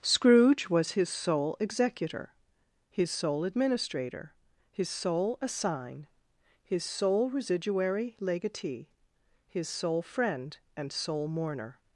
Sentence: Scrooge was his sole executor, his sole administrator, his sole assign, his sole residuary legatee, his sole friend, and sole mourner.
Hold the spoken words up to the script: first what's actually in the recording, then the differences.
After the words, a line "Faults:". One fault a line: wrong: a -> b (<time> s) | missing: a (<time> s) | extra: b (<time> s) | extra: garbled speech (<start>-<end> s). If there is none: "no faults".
Scrooge was his sole executor, his sole administrator, his sole assign, his sole residuary legatee, his sole friend, and sole mourner.
Faults:
no faults